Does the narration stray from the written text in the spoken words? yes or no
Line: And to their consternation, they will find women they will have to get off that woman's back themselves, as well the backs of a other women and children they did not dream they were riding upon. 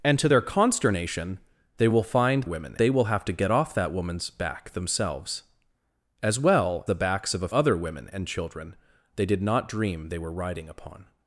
no